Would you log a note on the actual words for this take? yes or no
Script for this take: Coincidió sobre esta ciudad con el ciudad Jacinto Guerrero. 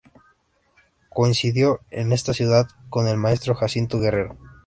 yes